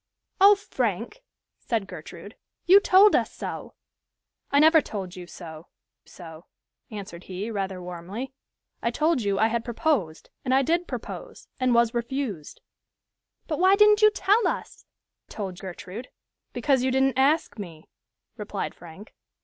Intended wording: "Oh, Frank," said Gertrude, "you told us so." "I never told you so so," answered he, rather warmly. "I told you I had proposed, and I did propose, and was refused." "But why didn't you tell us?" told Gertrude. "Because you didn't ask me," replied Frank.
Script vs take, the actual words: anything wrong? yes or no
no